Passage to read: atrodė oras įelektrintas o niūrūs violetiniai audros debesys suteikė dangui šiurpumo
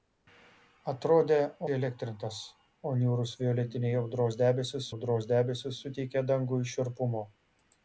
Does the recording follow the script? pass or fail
fail